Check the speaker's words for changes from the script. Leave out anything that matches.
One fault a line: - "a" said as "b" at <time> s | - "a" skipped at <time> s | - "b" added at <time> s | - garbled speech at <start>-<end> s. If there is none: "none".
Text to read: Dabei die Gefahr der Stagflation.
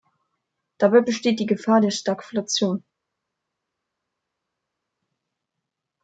- "besteht" added at 1.0 s